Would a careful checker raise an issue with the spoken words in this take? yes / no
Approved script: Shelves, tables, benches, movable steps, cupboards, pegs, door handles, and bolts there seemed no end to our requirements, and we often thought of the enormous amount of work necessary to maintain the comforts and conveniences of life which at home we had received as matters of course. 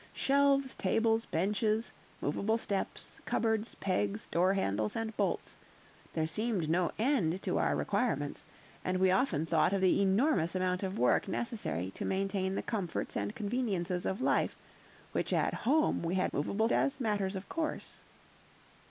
yes